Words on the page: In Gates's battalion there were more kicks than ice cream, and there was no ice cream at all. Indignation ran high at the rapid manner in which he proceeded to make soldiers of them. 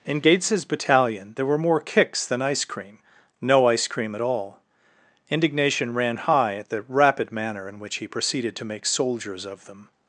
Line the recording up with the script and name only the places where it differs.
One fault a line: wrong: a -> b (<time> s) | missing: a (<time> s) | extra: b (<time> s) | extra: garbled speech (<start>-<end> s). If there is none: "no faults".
missing: and there was (3.0 s)